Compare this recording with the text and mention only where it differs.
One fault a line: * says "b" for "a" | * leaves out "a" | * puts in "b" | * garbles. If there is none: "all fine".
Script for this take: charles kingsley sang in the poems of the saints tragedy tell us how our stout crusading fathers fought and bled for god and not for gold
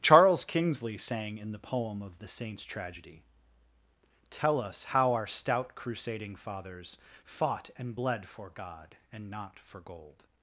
* says "poem" for "poems"